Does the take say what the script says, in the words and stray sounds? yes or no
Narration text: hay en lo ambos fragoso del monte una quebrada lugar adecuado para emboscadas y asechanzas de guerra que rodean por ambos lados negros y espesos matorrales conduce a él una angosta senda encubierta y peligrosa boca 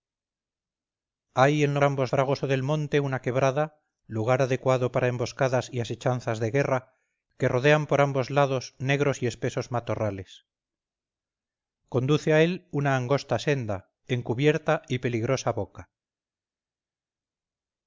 yes